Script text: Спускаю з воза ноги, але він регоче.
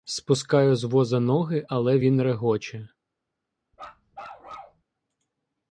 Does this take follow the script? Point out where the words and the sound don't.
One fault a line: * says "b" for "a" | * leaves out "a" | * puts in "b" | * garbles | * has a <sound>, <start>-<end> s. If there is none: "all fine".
* has a bark, 3.7-4.8 s